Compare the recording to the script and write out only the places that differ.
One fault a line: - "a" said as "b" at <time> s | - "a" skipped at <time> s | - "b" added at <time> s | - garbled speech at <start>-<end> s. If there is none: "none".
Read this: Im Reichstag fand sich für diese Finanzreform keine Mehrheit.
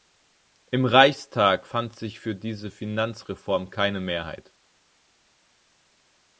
none